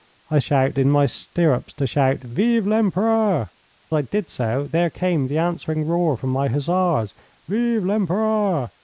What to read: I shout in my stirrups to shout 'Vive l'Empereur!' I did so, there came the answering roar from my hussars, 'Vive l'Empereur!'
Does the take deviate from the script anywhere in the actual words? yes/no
no